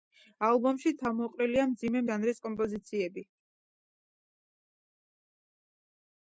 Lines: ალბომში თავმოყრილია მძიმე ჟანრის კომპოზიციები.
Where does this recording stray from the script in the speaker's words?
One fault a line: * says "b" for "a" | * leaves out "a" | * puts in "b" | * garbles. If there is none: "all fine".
all fine